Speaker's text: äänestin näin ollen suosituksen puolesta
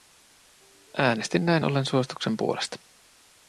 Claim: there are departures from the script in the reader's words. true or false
false